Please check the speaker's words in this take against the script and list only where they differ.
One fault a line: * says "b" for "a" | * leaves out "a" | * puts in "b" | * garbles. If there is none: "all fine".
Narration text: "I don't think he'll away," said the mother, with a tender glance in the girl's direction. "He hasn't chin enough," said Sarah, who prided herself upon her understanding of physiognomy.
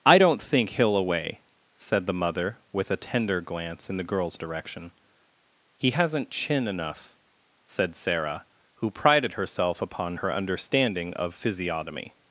all fine